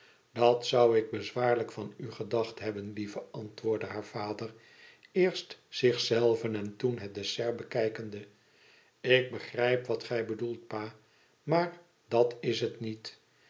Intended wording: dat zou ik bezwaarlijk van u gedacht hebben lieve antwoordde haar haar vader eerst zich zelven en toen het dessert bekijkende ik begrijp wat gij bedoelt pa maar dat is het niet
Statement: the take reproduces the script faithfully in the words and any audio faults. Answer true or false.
false